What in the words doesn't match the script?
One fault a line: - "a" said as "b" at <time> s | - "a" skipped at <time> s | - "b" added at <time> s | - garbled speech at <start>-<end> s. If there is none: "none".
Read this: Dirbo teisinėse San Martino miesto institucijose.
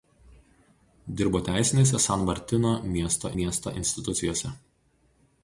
- "miesto" added at 3.4 s